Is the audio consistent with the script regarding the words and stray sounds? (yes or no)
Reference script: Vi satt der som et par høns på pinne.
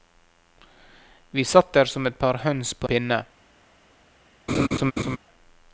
no